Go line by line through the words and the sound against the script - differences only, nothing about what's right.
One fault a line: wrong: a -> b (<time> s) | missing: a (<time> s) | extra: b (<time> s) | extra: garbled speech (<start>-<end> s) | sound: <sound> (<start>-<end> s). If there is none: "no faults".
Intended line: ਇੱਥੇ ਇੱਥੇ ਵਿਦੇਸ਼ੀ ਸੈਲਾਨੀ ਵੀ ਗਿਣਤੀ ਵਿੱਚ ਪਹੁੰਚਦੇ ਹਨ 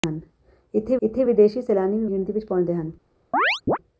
sound: chirp (3.3-3.8 s)